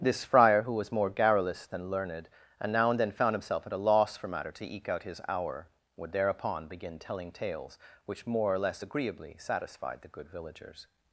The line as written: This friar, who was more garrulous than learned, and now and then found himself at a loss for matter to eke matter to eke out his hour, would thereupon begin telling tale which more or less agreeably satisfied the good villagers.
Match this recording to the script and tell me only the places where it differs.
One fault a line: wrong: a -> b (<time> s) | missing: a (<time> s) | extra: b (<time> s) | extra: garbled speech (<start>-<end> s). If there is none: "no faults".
missing: matter to eke (4.9 s)
wrong: tale -> tales (7.3 s)